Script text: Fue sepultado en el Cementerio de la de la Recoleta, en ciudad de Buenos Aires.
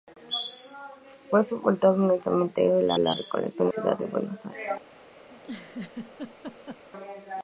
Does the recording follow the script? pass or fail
pass